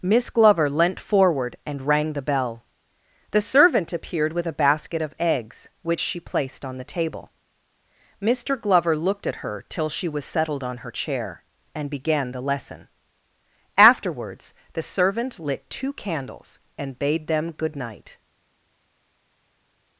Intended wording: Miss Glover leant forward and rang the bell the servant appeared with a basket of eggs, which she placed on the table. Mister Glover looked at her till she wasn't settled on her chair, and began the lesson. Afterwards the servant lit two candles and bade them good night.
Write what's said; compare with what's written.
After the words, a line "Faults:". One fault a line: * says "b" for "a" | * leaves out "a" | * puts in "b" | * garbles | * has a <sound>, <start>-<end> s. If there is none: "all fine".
Miss Glover leant forward and rang the bell the servant appeared with a basket of eggs, which she placed on the table. Mister Glover looked at her till she was settled on her chair, and began the lesson. Afterwards the servant lit two candles and bade them good night.
Faults:
* says "was" for "wasn't"